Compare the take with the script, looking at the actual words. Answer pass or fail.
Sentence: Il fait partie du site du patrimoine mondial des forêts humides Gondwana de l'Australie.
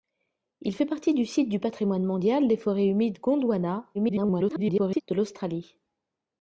fail